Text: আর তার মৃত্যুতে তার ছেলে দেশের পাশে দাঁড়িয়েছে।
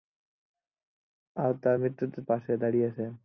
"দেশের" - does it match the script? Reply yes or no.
no